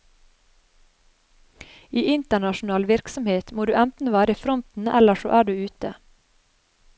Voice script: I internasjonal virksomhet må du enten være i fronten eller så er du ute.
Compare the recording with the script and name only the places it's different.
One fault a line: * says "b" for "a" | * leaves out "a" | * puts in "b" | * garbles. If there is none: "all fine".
all fine